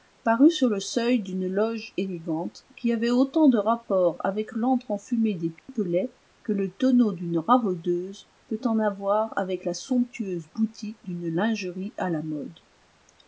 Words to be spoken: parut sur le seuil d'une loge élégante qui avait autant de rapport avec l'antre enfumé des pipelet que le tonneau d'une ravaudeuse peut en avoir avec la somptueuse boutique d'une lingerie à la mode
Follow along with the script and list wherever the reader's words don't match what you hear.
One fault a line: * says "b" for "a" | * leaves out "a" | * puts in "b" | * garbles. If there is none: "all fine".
all fine